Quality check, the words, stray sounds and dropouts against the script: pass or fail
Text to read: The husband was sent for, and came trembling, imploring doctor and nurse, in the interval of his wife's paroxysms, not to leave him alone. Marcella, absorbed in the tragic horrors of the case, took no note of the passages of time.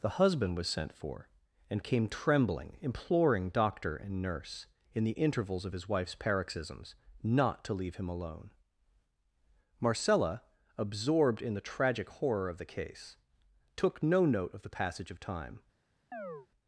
fail